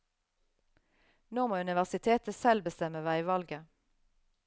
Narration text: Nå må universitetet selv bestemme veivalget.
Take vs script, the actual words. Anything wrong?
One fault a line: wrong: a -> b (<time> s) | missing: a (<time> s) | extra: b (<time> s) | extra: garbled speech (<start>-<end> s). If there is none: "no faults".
no faults